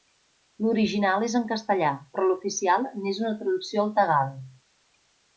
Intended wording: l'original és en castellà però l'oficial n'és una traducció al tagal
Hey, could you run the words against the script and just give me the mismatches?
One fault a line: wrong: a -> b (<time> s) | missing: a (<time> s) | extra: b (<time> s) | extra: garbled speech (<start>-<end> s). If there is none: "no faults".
no faults